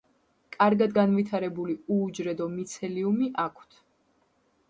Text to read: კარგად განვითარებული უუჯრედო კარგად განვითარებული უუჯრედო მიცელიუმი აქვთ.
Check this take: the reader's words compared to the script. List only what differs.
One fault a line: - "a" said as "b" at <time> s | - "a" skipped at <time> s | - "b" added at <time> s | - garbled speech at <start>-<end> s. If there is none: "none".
- "კარგად განვითარებული უუჯრედო" skipped at 2.5 s